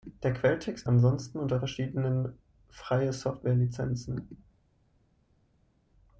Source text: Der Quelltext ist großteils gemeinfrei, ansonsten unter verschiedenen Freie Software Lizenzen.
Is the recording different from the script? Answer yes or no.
yes